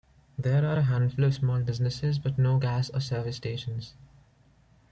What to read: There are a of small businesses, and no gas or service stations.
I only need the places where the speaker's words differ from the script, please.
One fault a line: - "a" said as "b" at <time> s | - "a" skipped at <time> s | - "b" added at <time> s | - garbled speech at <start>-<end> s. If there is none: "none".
- "handful" added at 0.8 s
- "and" said as "but" at 2.2 s